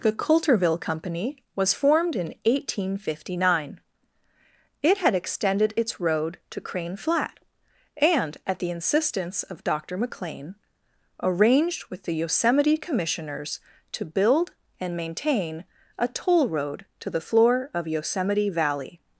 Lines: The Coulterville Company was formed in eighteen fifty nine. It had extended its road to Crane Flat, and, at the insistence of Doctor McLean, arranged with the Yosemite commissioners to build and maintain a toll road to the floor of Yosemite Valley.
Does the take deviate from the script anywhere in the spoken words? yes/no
no